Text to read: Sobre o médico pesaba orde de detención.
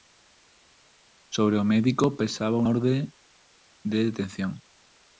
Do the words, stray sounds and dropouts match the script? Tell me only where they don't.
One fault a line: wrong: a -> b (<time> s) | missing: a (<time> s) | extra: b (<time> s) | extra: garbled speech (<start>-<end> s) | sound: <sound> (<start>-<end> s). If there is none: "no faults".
no faults